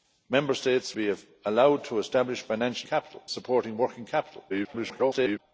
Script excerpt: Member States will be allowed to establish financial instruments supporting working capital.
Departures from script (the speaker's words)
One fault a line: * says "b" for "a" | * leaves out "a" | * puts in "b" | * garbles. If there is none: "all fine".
* leaves out "will"
* says "capital" for "instruments"
* garbles